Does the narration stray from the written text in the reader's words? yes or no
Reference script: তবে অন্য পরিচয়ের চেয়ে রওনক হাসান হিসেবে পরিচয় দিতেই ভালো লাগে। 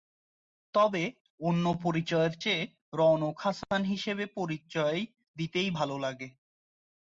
no